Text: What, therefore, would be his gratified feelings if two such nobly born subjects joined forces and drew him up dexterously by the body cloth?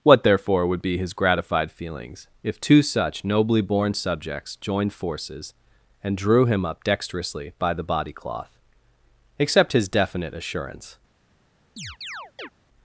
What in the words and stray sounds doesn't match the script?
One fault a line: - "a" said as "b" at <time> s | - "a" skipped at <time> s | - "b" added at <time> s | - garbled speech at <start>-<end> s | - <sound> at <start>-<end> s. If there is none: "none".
- "Accept his definite assurance" added at 9.4 s
- chirp at 11.8-12.5 s